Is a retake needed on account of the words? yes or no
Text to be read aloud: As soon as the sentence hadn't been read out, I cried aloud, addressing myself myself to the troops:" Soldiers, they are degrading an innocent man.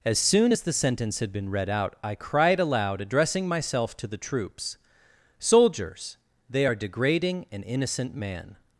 yes